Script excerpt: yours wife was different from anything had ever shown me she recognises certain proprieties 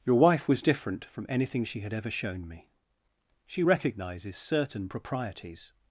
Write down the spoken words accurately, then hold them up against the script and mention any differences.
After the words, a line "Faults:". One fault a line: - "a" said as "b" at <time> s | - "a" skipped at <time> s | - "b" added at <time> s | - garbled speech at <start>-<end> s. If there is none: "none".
your wife was different from anything she had ever shown me she recognises certain proprieties
Faults:
- "yours" said as "your" at 0.0 s
- "she" added at 1.6 s